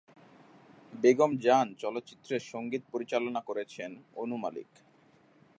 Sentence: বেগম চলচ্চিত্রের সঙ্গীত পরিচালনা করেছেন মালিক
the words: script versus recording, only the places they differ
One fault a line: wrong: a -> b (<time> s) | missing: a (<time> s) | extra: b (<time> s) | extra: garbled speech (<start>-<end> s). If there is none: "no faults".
extra: জান (1.4 s)
extra: অনু (4.1 s)